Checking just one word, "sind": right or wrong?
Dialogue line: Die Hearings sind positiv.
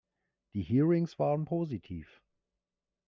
wrong